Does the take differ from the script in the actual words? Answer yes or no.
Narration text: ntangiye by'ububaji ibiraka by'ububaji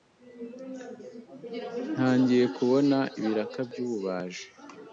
yes